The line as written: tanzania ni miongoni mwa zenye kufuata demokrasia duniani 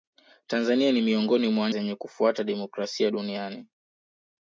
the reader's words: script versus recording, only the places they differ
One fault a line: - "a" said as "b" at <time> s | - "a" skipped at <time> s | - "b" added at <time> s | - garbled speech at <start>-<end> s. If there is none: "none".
none